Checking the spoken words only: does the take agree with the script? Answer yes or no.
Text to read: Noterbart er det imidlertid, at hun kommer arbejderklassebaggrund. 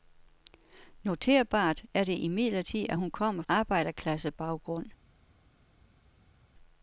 yes